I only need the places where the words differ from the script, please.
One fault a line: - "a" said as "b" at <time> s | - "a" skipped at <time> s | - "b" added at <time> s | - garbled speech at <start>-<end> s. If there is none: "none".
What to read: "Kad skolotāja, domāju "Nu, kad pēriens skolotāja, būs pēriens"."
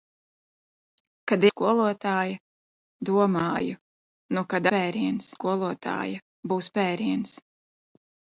none